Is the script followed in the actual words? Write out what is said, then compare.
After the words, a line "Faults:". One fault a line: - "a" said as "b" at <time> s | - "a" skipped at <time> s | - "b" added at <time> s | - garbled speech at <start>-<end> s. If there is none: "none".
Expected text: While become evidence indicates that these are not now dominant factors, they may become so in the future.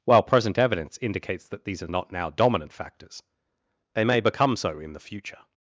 While present evidence indicates that these are not now dominant factors, they may become so in the future.
Faults:
- "become" said as "present" at 0.2 s